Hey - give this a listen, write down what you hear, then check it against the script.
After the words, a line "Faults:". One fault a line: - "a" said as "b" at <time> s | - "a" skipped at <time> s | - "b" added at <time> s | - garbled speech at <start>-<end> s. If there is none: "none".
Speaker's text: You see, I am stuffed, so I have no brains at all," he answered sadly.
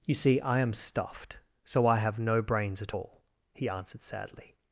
You see, I am stuffed, so I have no brains at all," he answered sadly.
Faults:
none